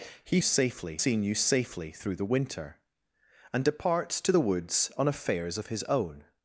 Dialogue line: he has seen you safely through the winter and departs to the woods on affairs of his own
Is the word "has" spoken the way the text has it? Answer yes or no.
no